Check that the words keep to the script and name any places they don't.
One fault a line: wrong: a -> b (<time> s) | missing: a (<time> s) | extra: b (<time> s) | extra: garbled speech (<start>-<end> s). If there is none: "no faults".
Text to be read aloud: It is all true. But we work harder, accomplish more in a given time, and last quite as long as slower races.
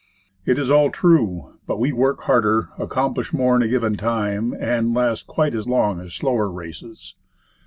no faults